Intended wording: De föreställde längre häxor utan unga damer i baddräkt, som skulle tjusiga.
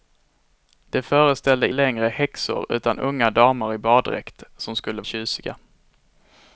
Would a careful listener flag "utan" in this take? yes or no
no